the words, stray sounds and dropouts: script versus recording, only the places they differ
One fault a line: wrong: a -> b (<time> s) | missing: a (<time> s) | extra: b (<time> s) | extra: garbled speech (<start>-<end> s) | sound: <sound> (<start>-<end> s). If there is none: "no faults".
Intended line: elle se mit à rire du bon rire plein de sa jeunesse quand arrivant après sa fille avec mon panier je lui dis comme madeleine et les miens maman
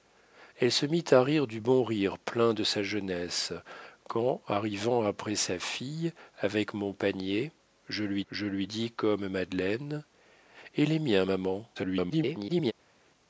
extra: je lui (8.3 s)
extra: garbled speech (11.8-12.7 s)